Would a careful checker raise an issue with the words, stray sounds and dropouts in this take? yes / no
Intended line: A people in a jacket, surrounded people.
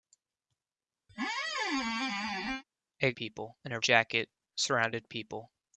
yes